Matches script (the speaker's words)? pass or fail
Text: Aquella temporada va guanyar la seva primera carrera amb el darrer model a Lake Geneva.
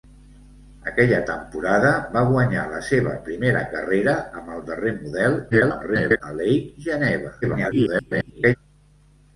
fail